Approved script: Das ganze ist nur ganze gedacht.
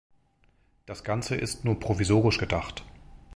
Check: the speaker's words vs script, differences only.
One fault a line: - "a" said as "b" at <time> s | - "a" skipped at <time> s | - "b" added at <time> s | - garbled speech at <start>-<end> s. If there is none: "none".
- "ganze" said as "provisorisch" at 1.8 s